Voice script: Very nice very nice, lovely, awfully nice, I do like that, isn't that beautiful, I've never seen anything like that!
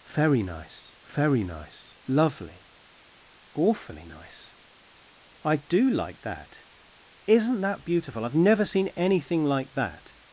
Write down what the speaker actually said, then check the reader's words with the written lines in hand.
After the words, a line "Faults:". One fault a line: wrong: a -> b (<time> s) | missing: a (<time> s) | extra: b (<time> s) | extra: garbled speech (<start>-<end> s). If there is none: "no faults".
Very nice very nice, lovely, awfully nice, I do like that, isn't that beautiful, I've never seen anything like that!
Faults:
no faults